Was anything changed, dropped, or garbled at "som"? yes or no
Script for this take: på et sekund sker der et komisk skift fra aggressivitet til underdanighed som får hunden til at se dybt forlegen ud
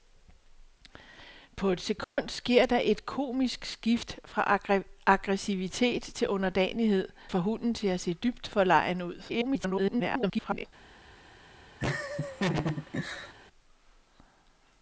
yes